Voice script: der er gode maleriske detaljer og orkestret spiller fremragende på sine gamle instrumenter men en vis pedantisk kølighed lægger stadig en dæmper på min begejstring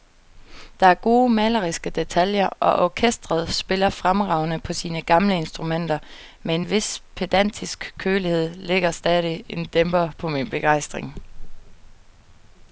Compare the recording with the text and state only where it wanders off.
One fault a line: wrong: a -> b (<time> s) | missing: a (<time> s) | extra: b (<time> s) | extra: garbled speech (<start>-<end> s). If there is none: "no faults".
no faults